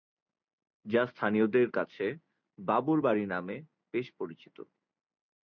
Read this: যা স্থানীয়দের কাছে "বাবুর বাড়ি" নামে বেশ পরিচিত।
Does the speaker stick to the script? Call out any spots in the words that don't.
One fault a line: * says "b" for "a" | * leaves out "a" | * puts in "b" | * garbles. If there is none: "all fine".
all fine